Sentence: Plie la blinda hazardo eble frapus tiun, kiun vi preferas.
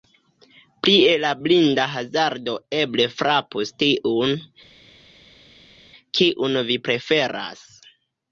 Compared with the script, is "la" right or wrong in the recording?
right